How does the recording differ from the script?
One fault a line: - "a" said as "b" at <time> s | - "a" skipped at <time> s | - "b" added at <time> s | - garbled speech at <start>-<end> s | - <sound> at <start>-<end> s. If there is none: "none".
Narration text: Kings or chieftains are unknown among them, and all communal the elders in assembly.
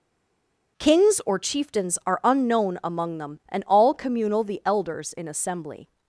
none